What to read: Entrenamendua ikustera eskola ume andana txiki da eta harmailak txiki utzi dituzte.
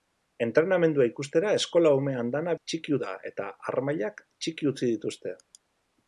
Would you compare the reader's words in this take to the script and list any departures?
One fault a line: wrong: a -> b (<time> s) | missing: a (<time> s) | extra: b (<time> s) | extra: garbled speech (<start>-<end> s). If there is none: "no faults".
no faults